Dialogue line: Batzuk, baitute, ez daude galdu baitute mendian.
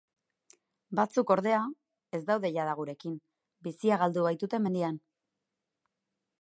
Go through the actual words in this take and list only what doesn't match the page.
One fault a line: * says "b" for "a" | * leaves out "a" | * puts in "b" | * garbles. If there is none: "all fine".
* says "ordea" for "baitute"
* puts in "jada gurekin bizia"